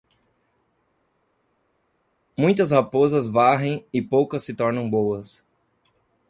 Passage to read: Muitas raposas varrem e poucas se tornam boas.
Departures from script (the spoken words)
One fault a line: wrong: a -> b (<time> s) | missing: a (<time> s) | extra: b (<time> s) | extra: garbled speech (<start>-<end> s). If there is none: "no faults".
no faults